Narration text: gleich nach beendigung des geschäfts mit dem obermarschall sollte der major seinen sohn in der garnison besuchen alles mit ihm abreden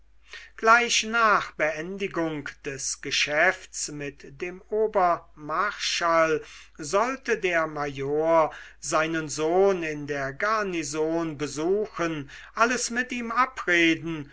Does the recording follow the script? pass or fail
pass